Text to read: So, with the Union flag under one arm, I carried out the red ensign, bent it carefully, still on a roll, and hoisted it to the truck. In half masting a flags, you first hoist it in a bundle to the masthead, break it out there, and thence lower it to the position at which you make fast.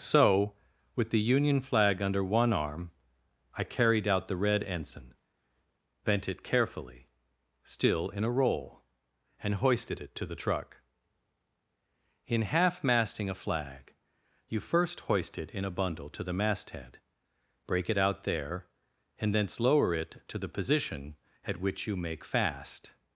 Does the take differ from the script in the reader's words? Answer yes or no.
yes